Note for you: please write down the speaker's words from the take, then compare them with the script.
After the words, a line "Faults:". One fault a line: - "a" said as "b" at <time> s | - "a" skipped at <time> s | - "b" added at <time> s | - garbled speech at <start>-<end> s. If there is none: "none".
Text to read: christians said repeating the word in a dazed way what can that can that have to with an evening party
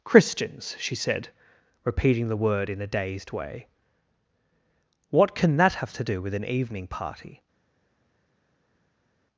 christians she said repeating the word in a dazed way what can that have to do with an evening party
Faults:
- "she" added at 0.8 s
- "can that" skipped at 5.8 s
- "do" added at 6.0 s